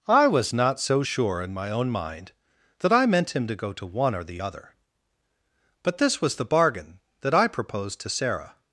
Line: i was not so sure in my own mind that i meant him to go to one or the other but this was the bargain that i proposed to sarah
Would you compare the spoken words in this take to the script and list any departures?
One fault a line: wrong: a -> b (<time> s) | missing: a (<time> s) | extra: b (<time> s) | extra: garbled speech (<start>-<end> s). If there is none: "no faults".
no faults